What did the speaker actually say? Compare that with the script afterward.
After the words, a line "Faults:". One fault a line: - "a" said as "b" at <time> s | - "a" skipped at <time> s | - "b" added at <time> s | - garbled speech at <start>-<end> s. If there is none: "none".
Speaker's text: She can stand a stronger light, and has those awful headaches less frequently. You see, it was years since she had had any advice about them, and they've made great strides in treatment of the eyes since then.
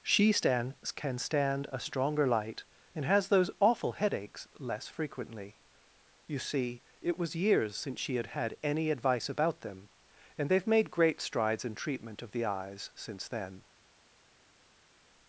She stand can stand a stronger light, and has those awful headaches less frequently. You see, it was years since she had had any advice about them, and they've made great strides in treatment of the eyes since then.
Faults:
- "stand" added at 0.3 s